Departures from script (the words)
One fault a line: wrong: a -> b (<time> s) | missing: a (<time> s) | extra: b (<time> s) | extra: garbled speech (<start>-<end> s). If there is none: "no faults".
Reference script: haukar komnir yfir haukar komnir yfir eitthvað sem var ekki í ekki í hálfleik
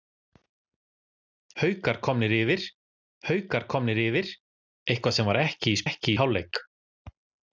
no faults